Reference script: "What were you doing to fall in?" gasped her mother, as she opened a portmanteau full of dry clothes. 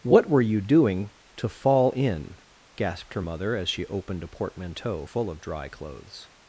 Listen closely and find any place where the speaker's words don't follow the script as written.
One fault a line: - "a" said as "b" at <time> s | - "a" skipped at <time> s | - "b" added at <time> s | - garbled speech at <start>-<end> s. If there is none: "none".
none